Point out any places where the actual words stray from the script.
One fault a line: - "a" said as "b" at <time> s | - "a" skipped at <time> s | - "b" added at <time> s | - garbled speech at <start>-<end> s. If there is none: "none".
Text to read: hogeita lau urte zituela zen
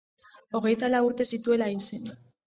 - "hil" added at 1.8 s